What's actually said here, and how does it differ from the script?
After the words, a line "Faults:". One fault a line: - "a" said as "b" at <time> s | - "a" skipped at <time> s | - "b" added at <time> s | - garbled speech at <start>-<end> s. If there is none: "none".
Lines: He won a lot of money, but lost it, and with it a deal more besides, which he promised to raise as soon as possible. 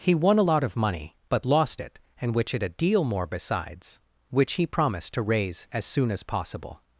He won a lot of money, but lost it, and which it a deal more besides, which he promised to raise as soon as possible.
Faults:
- "with" said as "which" at 2.3 s